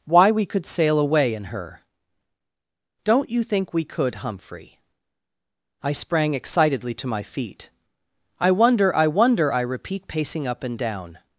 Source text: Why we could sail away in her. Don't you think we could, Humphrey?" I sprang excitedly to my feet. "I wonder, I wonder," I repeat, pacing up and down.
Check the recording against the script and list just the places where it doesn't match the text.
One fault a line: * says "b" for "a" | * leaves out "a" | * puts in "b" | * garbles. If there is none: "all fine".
all fine